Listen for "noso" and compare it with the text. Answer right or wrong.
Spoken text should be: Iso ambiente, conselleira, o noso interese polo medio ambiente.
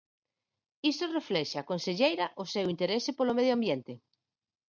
wrong